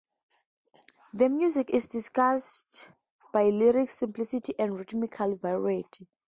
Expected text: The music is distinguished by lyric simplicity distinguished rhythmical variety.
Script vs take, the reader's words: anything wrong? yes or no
yes